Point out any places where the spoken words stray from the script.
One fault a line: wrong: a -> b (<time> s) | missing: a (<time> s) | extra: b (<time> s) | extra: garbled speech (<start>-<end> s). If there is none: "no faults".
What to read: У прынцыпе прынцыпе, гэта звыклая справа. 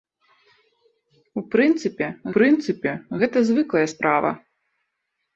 no faults